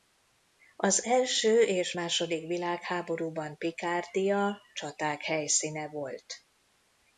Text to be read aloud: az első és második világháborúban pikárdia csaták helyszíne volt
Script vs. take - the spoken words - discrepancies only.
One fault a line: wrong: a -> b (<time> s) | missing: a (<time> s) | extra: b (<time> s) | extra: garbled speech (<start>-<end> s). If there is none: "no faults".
no faults